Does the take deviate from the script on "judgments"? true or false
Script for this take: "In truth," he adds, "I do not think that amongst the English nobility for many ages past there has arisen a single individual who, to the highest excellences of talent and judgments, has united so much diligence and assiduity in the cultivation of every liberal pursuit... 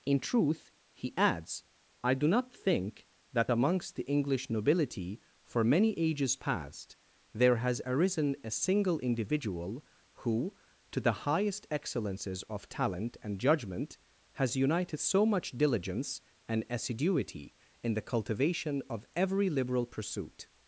true